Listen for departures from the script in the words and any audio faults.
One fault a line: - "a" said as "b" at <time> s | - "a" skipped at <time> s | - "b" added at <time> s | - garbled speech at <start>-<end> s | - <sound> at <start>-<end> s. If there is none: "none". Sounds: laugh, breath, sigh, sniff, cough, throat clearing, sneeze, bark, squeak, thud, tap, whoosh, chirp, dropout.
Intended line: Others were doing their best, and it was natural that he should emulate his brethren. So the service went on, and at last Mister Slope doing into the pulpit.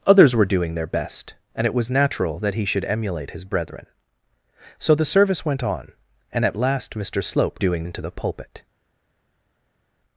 none